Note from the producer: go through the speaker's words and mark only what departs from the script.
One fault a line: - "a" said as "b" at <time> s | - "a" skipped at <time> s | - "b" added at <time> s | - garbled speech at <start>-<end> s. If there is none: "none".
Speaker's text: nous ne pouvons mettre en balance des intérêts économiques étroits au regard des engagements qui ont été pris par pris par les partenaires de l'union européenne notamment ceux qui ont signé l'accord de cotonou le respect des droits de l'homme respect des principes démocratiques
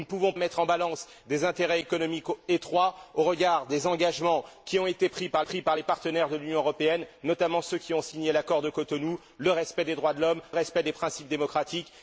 none